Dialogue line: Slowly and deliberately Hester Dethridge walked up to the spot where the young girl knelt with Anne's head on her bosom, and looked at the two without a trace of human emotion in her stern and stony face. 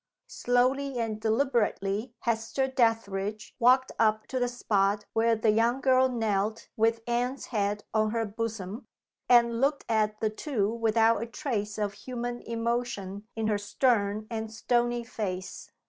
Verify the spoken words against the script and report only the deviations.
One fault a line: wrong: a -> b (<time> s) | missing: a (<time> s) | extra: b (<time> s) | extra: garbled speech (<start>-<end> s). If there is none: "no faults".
no faults